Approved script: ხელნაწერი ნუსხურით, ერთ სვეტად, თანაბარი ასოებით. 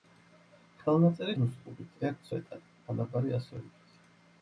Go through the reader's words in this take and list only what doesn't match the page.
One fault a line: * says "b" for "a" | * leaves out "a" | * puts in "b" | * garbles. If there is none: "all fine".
all fine